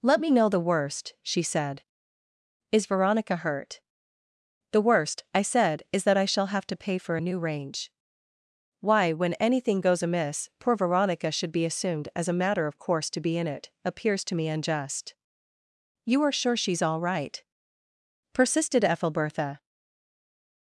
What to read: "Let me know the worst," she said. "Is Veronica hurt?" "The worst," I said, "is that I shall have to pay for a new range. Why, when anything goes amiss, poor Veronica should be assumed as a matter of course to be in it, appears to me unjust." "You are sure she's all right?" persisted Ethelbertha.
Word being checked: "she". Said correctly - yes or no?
yes